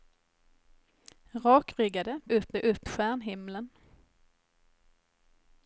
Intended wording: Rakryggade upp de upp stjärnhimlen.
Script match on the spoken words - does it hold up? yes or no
yes